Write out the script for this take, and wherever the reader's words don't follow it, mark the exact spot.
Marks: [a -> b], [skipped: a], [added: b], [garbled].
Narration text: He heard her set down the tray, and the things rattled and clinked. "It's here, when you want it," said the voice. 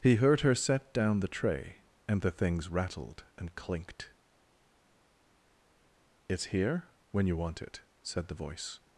He heard her set down the tray, and the things rattled and clinked. "It's here, when you want it," said the voice.